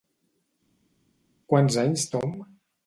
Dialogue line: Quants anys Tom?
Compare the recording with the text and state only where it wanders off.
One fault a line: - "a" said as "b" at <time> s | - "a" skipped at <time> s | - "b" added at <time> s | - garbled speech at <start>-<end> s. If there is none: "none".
none